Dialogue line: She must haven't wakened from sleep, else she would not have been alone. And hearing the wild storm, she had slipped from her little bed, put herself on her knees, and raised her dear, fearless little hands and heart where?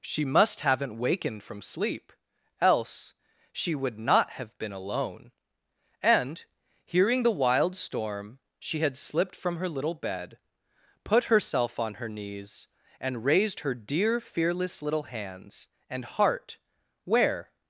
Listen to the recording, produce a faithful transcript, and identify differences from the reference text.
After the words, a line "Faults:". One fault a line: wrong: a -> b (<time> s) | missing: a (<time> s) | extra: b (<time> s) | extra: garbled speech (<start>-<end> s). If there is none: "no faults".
She must haven't wakened from sleep, else she would not have been alone. And hearing the wild storm, she had slipped from her little bed, put herself on her knees, and raised her dear, fearless little hands and heart where?
Faults:
no faults